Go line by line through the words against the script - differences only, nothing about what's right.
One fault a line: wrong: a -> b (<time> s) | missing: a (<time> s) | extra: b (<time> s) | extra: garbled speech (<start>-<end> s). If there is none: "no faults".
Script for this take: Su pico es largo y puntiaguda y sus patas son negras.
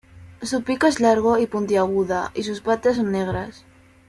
no faults